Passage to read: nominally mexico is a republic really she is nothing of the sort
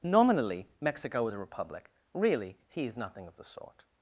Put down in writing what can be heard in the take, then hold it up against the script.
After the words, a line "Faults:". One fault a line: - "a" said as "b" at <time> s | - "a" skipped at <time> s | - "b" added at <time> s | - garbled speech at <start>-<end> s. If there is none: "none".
nominally mexico is a republic really he is nothing of the sort
Faults:
- "she" said as "he" at 2.7 s